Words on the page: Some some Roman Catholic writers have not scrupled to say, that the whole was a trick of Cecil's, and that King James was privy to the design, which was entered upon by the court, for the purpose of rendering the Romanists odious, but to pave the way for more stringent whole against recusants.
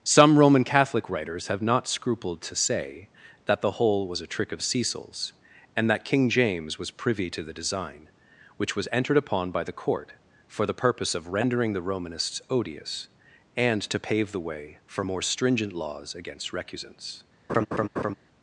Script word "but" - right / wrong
wrong